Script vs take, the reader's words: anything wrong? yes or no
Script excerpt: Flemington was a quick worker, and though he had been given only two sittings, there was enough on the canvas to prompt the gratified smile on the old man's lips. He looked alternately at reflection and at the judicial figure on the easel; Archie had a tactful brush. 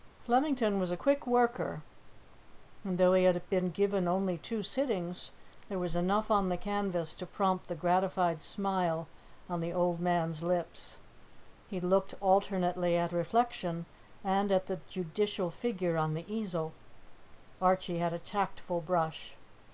no